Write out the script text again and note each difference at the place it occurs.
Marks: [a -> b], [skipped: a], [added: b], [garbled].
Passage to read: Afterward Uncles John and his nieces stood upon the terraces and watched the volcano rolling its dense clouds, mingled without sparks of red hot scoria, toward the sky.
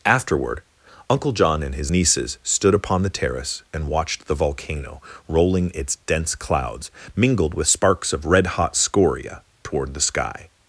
Afterward [Uncles -> Uncle] John and his nieces stood upon the [terraces -> terrace] and watched the volcano rolling its dense clouds, mingled [without -> with] sparks of red hot scoria, toward the sky.